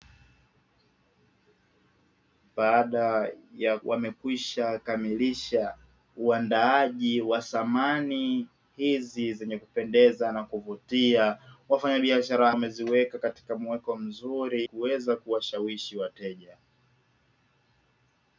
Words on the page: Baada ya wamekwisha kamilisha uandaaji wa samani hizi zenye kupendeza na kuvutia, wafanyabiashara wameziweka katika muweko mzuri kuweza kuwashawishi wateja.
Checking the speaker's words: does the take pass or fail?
pass